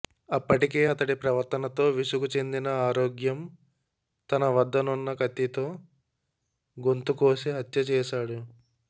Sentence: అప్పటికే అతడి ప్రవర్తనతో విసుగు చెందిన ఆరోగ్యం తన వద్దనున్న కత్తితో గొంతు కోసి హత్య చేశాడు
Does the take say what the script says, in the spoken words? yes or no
yes